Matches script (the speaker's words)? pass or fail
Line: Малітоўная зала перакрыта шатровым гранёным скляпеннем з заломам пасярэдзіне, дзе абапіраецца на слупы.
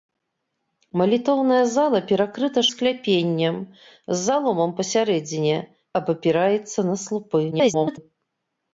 fail